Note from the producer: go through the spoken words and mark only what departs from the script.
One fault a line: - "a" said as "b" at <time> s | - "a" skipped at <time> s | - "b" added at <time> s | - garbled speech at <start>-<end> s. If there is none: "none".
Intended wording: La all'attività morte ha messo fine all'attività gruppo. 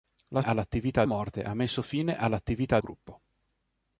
none